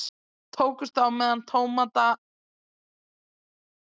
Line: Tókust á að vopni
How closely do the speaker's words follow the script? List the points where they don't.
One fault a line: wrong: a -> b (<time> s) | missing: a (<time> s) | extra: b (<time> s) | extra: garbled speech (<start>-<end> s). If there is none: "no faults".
extra: með tómata (1.2 s)